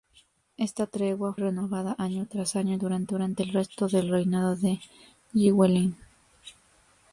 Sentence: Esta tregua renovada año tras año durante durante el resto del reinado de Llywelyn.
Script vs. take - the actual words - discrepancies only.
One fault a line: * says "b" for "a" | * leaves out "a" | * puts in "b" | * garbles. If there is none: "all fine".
all fine